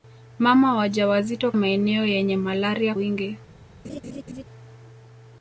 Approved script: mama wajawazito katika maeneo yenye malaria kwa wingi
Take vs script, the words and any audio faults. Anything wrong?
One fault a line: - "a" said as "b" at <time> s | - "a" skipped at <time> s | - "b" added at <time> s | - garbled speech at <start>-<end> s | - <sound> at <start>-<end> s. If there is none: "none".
- "katika" skipped at 1.5 s
- "kwa" skipped at 2.9 s
- laugh at 3.8-4.4 s